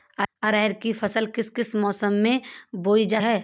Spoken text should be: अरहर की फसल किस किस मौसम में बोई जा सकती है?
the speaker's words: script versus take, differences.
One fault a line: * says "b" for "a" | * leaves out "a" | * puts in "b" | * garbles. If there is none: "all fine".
* leaves out "सकती"